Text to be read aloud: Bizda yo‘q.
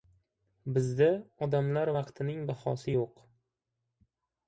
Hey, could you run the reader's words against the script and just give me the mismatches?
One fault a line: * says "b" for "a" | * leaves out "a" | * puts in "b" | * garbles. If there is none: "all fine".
* puts in "odamlar vaqtining bahosi"